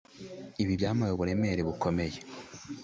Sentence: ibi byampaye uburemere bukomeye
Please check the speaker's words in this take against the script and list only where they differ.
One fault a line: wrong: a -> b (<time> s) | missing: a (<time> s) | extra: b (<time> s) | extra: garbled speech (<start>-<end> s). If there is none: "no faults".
no faults